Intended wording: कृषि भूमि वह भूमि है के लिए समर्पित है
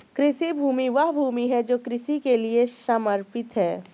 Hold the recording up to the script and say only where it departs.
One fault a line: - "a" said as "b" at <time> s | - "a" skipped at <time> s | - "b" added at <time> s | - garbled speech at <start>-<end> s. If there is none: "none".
- "जो कृषि" added at 1.6 s